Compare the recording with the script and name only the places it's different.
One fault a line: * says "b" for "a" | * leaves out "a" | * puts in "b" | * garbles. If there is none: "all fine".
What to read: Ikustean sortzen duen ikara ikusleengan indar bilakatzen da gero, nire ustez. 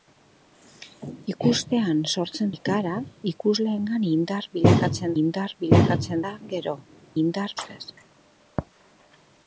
* leaves out "duen"
* puts in "indar bilakatzen"
* says "indar" for "nire"